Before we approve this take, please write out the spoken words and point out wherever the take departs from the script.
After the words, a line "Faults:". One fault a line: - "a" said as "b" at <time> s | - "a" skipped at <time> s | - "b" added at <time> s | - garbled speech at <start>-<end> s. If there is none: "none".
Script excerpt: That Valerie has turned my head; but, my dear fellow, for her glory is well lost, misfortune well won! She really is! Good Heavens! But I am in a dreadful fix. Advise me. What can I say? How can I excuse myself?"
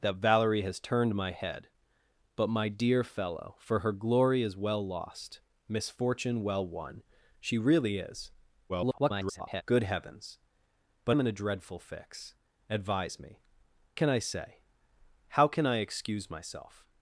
That Valerie has turned my head; but, my dear fellow, for her glory is well lost, misfortune well won! She really is! [garbled] Good Heavens! But am in a dreadful fix. Advise me. Can I say? How can I excuse myself?"
Faults:
- garbled speech at 8.7-9.6 s
- "I" skipped at 11.2 s
- "What" skipped at 13.4 s